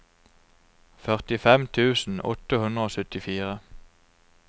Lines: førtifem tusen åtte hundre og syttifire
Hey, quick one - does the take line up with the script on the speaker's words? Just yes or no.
yes